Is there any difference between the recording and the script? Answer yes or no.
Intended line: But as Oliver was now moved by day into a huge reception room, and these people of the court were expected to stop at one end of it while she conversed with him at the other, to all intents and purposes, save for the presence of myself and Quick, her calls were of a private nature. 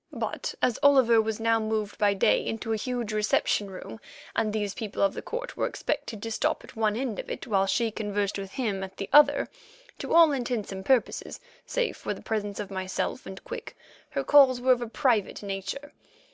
no